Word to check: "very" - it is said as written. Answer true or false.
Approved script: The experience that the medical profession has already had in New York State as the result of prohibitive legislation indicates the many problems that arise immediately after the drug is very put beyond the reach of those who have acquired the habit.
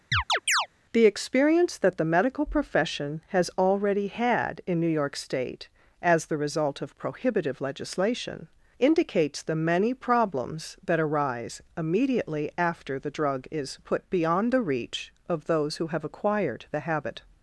false